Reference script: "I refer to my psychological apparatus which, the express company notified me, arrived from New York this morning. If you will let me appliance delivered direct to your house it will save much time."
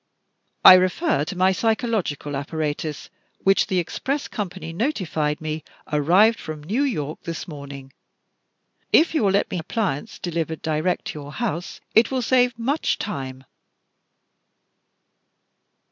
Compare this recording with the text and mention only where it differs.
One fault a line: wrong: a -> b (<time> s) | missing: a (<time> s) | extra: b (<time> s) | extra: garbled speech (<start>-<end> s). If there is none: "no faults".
no faults